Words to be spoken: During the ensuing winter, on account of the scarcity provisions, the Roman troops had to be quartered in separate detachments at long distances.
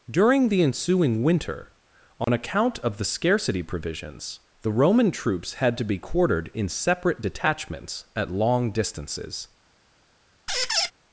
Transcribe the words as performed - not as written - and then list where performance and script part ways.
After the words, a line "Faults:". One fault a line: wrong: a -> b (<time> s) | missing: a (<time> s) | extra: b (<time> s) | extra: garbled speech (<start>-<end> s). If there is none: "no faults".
During the ensuing winter, on account of the scarcity provisions, the Roman troops had to be quartered in separate detachments at long distances.
Faults:
no faults